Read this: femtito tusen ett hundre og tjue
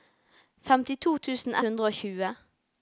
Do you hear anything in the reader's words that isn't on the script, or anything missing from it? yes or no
yes